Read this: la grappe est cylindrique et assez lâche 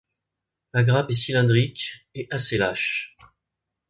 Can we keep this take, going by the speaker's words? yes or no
yes